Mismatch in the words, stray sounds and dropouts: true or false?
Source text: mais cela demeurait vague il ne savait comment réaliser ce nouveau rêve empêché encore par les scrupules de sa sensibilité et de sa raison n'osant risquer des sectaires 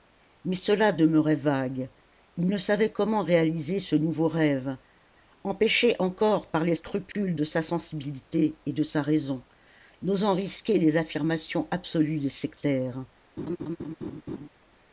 true